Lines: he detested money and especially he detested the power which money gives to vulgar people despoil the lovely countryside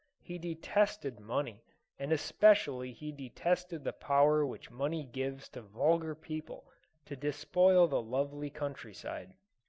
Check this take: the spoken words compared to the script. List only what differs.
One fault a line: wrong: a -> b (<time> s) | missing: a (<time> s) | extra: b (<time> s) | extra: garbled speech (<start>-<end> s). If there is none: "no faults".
extra: to (7.0 s)